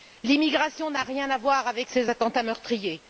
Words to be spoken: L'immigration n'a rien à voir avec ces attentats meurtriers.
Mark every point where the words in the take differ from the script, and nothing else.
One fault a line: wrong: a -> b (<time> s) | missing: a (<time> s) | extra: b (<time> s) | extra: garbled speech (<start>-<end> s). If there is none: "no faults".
no faults